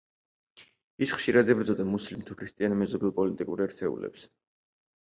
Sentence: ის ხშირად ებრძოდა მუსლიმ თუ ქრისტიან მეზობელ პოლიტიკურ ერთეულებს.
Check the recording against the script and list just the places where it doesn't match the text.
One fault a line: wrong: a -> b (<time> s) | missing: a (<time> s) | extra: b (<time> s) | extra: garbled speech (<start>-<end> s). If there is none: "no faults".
no faults